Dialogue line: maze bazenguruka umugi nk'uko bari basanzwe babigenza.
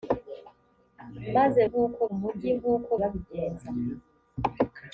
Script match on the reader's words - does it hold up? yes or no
no